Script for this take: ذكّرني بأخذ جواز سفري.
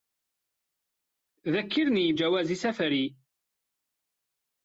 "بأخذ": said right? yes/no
no